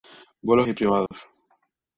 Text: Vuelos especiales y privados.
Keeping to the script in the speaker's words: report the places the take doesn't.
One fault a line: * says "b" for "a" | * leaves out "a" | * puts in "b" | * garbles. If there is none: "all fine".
* leaves out "especiales"